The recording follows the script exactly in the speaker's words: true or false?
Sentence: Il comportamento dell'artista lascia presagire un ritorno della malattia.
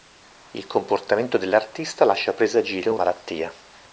false